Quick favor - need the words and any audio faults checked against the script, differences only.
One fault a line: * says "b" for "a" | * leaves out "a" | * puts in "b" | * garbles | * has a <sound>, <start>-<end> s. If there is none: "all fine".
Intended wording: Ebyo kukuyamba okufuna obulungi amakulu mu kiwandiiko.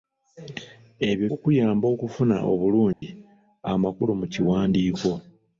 * has a dropout, 2.9-3.0 s